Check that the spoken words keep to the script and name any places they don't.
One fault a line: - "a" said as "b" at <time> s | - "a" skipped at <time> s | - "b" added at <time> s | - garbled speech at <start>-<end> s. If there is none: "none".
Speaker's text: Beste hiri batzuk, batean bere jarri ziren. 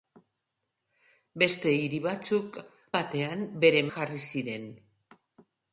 none